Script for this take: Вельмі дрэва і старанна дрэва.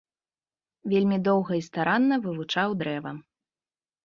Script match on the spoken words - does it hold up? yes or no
no